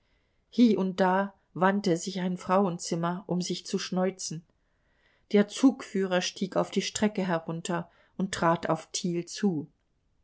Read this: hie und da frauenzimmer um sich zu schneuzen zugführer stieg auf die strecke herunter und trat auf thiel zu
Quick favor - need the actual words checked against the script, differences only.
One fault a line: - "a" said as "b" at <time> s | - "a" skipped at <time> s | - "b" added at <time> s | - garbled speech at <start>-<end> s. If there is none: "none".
- "wandte sich ein" added at 1.5 s
- "der" added at 5.3 s